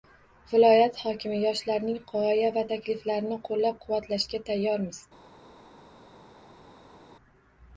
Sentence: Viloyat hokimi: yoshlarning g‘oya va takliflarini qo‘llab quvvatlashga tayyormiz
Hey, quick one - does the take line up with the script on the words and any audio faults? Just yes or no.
yes